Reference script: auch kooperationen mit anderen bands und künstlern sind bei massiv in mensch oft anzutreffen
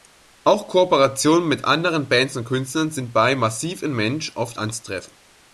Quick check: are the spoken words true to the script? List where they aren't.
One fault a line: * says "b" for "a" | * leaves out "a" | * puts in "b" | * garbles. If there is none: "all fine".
all fine